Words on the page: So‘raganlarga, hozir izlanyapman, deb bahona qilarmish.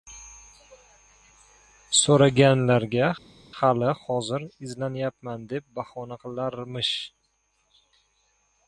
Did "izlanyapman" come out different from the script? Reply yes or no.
no